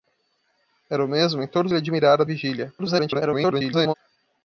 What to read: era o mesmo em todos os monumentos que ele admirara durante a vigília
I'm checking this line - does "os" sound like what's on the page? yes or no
no